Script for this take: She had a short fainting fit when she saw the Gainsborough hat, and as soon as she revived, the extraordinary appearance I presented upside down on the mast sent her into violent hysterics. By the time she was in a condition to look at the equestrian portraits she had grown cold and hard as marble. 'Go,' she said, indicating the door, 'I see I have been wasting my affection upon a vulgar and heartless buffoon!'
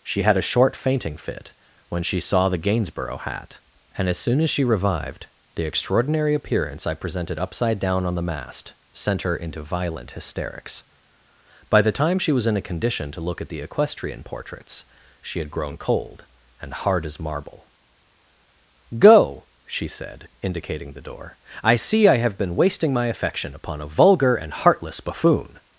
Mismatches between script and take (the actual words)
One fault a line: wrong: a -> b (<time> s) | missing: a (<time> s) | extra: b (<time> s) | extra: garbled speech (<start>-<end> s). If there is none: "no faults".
no faults